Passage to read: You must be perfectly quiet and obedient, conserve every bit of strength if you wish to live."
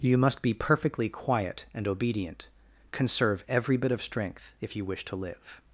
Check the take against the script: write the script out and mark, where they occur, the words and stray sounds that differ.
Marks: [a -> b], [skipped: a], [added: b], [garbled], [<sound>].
You must be perfectly quiet and obedient, conserve every bit of strength if you wish to live."